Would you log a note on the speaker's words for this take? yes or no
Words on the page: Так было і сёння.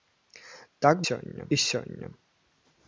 yes